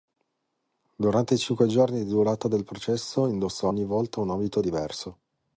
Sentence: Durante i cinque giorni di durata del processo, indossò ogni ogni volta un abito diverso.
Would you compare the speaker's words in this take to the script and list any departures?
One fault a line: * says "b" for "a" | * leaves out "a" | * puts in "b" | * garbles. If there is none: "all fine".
* leaves out "ogni"